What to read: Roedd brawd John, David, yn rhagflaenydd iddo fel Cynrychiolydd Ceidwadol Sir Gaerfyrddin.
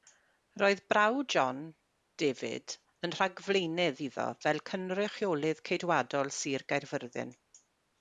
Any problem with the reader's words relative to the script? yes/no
no